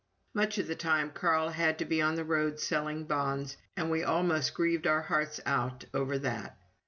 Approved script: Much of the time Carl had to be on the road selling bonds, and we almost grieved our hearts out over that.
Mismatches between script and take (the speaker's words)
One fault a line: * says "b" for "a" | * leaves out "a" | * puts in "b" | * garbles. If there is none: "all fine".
all fine